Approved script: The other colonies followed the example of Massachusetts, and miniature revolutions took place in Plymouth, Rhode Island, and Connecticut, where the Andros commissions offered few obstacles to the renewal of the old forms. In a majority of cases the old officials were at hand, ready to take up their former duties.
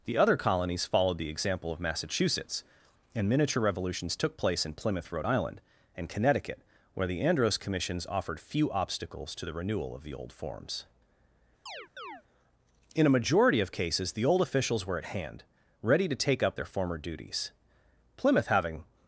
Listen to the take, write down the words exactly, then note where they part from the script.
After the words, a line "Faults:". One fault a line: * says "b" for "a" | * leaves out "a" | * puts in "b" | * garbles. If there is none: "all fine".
The other colonies followed the example of Massachusetts, and miniature revolutions took place in Plymouth, Rhode Island, and Connecticut, where the Andros commissions offered few obstacles to the renewal of the old forms. In a majority of cases the old officials were at hand, ready to take up their former duties. Plymouth, having
Faults:
* puts in "Plymouth having"